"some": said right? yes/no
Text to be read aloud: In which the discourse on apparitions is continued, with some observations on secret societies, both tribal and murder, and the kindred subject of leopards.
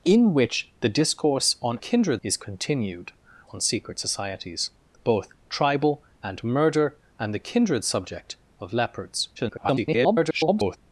no